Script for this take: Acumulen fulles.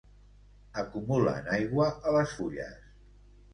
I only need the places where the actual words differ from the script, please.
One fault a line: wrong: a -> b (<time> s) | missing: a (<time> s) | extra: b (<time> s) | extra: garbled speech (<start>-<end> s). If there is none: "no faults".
extra: aigua a les (1.6 s)